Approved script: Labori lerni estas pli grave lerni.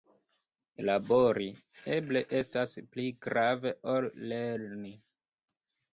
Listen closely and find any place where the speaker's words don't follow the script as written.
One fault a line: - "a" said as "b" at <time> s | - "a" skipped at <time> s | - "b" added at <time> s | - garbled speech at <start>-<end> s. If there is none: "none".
- "lerni" said as "eble" at 2.0 s
- "ol" added at 4.0 s